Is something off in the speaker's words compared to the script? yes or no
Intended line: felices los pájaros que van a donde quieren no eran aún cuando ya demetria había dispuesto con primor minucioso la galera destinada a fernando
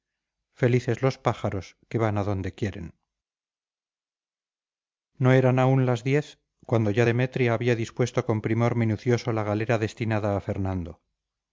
yes